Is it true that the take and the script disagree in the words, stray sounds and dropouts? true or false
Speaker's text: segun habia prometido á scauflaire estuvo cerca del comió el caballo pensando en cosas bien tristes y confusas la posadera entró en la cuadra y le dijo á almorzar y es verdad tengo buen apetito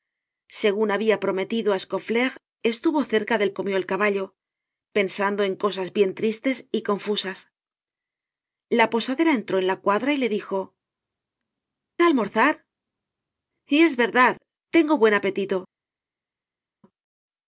false